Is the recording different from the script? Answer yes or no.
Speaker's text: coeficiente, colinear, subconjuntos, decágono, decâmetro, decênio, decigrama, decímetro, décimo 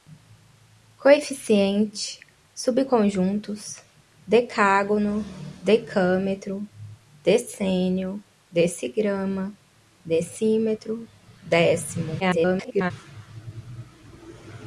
yes